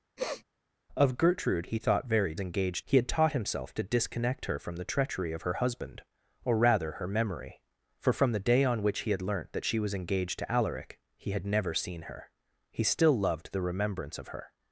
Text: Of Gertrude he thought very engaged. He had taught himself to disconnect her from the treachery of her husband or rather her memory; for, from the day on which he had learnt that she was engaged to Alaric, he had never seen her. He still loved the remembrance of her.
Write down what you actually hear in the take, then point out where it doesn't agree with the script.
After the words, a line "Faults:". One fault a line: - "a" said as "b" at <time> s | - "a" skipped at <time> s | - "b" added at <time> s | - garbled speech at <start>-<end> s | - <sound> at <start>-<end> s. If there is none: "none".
Of Gertrude he thought very engaged. He had taught himself to disconnect her from the treachery of her husband or rather her memory; for, from the day on which he had learnt that she was engaged to Alaric, he had never seen her. He still loved the remembrance of her.
Faults:
- sniff at 0.2-0.4 s